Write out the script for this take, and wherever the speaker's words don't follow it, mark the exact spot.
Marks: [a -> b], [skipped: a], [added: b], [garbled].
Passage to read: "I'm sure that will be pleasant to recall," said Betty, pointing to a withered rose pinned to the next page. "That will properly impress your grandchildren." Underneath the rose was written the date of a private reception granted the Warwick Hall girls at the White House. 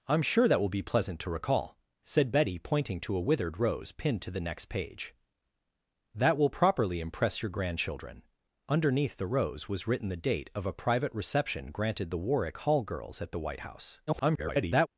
"I'm sure that will be pleasant to recall," said Betty, pointing to a withered rose pinned to the next page. "That will properly impress your grandchildren." Underneath the rose was written the date of a private reception granted the Warwick Hall girls at the White House. [garbled]